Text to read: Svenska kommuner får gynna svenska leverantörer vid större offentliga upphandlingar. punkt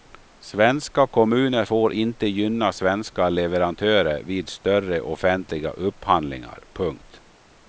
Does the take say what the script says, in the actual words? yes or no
no